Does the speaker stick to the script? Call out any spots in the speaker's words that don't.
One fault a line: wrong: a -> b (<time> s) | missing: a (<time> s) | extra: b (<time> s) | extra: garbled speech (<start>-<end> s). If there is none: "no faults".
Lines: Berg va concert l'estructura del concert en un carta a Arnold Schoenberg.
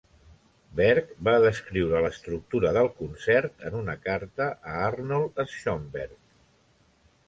wrong: concert -> descriure (1.4 s)
wrong: un -> una (3.8 s)